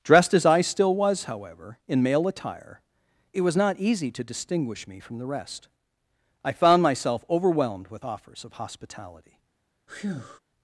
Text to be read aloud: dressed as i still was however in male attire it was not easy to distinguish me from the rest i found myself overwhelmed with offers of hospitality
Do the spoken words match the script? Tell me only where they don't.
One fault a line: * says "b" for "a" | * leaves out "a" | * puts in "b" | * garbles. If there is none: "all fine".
all fine